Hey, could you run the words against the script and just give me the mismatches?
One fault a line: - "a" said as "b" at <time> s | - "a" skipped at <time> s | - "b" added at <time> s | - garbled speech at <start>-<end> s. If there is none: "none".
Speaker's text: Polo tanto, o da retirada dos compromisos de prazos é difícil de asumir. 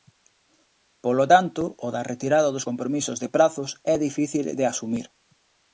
none